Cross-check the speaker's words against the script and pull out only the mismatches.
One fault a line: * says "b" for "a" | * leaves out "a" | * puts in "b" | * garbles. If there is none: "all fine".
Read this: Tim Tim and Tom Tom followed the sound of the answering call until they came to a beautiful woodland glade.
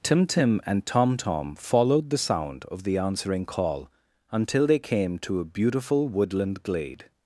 all fine